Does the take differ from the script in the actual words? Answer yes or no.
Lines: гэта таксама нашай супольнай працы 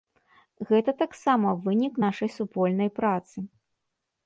yes